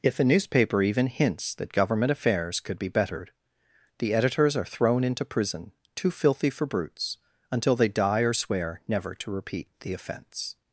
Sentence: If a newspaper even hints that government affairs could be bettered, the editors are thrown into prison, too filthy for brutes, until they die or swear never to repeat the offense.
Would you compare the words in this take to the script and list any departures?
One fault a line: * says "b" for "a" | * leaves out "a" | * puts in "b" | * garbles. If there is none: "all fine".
all fine